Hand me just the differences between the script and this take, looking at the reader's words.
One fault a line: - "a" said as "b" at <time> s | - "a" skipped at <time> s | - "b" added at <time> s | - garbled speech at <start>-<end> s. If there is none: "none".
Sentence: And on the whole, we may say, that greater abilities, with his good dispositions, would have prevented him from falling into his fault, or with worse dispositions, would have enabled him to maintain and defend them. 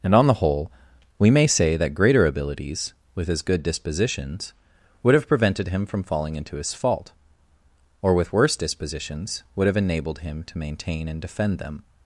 none